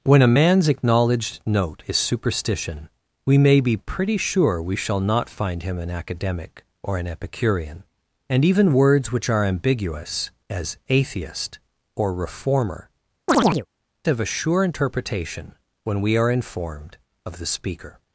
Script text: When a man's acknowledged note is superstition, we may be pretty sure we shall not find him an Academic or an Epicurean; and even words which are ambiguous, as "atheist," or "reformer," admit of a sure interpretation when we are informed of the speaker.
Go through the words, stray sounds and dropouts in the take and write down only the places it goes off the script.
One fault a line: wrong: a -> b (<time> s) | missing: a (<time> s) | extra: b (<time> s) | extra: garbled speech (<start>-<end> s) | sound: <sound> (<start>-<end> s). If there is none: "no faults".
missing: admit (12.9 s)
sound: chirp (13.3-13.7 s)